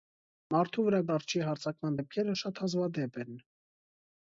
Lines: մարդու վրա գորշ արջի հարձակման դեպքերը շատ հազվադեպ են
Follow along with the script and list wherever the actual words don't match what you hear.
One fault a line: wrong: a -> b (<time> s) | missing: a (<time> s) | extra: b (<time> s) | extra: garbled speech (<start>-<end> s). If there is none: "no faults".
missing: գորշ (1.0 s)